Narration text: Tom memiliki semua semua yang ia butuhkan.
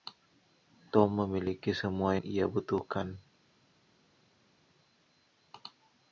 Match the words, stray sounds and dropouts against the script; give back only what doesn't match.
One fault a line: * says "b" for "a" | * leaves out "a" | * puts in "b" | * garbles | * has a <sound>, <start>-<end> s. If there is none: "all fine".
* leaves out "semua"